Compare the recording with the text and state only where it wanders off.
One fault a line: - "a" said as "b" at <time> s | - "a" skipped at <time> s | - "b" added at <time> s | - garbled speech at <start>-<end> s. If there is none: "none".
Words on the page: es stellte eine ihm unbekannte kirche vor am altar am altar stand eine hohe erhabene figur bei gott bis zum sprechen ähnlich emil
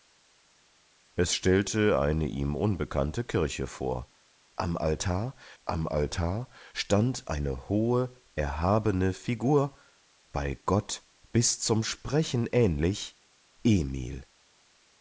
none